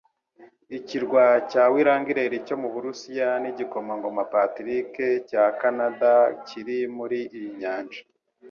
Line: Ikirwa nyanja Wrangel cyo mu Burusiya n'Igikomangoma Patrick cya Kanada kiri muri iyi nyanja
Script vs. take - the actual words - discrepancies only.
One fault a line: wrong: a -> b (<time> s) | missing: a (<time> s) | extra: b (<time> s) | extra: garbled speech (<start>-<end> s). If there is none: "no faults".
wrong: nyanja -> cya (1.5 s)